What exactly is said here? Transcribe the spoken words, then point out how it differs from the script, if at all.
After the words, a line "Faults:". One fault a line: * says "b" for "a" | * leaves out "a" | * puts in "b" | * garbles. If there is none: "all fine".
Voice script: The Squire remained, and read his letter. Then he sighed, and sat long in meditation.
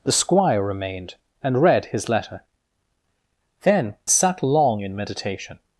The Squire remained, and read his letter. Then sat long in meditation.
Faults:
* leaves out "he sighed and"